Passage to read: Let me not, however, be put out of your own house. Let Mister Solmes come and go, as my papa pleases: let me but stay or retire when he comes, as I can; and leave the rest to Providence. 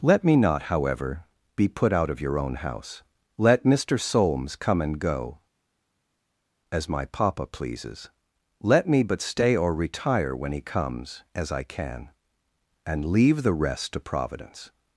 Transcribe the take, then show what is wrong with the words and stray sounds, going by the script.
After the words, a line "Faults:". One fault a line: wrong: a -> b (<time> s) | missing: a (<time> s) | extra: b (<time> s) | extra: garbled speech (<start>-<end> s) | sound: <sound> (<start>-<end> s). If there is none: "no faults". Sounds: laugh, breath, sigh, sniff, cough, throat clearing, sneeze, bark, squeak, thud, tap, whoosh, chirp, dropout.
Let me not, however, be put out of your own house. Let Mister Solmes come and go, as my papa pleases: let me but stay or retire when he comes, as I can; and leave the rest to Providence.
Faults:
no faults